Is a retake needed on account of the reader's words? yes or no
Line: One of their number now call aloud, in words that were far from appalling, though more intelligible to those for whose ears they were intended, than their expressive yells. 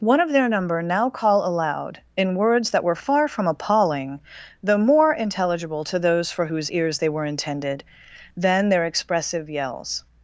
no